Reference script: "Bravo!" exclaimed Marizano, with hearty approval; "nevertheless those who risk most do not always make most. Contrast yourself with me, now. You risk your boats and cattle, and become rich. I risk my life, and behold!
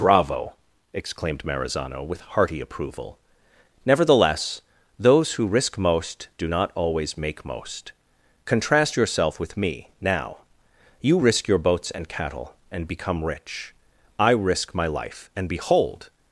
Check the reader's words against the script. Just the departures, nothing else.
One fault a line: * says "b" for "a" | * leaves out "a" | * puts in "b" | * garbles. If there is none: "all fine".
all fine